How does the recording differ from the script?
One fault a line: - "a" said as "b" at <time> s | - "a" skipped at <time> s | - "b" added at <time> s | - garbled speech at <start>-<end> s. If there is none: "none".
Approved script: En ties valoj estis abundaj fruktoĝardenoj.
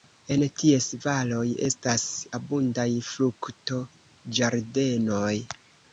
- "estis" said as "estas" at 1.7 s